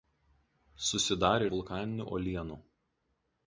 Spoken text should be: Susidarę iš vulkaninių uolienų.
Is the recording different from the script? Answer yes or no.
yes